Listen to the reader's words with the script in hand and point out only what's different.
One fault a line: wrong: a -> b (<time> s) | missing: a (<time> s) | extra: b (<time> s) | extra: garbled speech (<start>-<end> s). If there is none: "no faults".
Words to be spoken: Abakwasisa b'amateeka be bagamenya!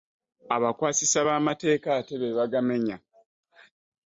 extra: ate (2.0 s)